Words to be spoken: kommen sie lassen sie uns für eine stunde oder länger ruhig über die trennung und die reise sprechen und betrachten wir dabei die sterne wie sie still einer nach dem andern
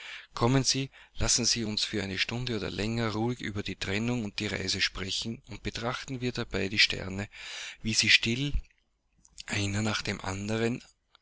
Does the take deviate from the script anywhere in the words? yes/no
no